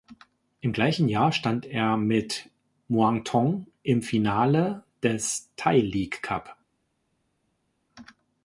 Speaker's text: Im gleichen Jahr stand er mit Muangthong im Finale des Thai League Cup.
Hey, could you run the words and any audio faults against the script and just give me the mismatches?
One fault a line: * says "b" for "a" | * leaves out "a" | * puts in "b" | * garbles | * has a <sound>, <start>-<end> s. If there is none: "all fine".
all fine